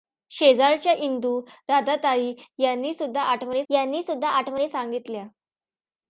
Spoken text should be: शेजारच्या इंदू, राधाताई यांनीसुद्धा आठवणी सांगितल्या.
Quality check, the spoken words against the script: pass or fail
fail